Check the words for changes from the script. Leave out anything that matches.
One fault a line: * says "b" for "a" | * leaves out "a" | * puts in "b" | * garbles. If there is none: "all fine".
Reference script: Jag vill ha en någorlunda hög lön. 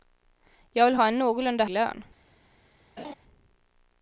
* leaves out "hög"